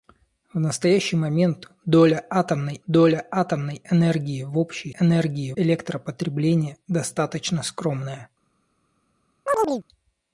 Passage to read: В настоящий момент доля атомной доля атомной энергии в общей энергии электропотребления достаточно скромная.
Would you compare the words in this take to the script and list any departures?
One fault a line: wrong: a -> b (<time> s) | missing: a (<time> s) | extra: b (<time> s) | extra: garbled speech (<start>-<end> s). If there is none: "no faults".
no faults